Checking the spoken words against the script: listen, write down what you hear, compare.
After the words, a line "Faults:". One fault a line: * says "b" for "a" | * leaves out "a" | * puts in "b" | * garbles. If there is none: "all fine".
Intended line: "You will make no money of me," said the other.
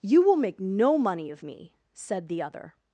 "You will make no money of me," said the other.
Faults:
all fine